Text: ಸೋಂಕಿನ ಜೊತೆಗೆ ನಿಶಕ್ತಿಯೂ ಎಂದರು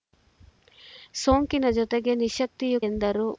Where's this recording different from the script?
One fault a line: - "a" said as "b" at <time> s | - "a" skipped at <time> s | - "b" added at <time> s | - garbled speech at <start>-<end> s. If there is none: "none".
none